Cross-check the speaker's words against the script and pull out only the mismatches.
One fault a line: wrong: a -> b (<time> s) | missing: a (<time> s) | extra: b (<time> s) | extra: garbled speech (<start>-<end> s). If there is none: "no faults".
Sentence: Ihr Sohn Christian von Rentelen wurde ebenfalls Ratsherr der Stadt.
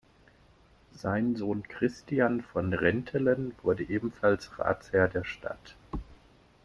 wrong: Ihr -> Sein (0.9 s)